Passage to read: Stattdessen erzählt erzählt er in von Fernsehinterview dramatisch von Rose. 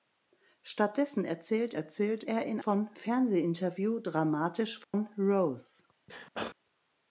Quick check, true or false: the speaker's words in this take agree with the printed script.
true